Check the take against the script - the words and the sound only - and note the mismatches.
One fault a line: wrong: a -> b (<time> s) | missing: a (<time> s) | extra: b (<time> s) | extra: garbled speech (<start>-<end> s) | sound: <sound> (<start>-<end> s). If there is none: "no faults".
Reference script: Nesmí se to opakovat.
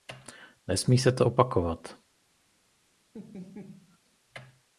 sound: laugh (3.1-4.0 s)